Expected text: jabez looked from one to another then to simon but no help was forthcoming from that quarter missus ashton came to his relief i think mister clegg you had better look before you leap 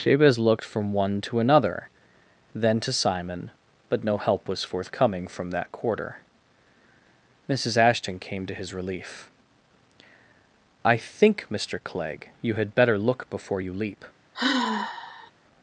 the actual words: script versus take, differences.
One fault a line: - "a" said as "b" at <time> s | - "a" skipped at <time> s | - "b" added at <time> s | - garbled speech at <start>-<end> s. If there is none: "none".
none